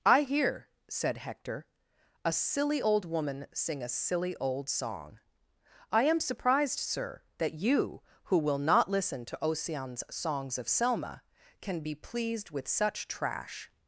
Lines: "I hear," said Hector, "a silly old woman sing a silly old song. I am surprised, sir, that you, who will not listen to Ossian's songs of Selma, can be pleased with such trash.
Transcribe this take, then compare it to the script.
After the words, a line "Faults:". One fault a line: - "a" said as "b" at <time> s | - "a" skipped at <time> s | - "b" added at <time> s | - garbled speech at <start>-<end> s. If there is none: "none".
"I hear," said Hector, "a silly old woman sing a silly old song. I am surprised, sir, that you, who will not listen to Ossian's songs of Selma, can be pleased with such trash.
Faults:
none